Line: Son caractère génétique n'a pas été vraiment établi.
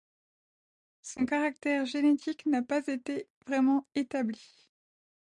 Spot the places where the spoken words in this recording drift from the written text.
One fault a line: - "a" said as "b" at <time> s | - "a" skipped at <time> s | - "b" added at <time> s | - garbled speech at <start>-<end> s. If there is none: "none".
none